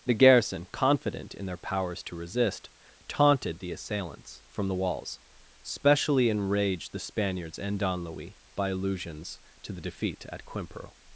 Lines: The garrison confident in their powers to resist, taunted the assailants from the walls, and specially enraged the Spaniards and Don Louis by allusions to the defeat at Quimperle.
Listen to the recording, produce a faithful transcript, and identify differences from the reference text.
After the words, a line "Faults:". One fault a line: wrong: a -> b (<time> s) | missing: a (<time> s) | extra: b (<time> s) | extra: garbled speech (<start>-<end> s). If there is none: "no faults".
The garrison confident in their powers to resist, taunted the assailants from the walls, specially enraged the Spaniards and Don Louis by allusions to the defeat at Quimperle.
Faults:
missing: and (5.2 s)